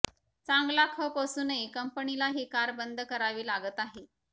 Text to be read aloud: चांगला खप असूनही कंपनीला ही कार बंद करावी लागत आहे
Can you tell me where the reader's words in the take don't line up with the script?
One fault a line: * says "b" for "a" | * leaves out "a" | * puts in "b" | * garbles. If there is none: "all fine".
all fine